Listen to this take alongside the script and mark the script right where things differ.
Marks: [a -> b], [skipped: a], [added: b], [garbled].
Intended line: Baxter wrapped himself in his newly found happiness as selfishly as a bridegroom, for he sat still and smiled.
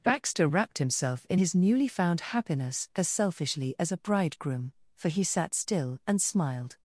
Baxter wrapped himself in his newly found happiness as selfishly as a bridegroom, for he sat still and smiled.